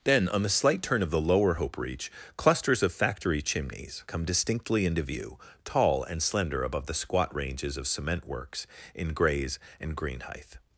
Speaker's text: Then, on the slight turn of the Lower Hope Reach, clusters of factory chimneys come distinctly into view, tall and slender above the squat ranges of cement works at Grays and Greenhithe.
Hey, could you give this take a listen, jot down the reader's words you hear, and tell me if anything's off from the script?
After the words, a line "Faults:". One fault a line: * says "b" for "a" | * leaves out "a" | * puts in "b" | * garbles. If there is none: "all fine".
Then, on the slight turn of the Lower Hope Reach, clusters of factory chimneys come distinctly into view, tall and slender above the squat ranges of cement works in Grays and Greenhithe.
Faults:
* says "in" for "at"